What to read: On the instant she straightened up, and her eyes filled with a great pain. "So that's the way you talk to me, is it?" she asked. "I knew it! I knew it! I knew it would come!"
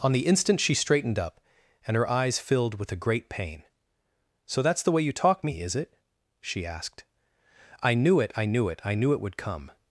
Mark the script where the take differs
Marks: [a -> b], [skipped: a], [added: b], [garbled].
On the instant she straightened up, and her eyes filled with a great pain. "So that's the way you talk [skipped: to] me, is it?" she asked. "I knew it! I knew it! I knew it would come!"